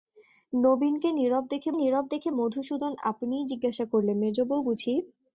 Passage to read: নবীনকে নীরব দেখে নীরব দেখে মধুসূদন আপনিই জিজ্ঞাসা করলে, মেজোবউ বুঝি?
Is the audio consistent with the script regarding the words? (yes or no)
yes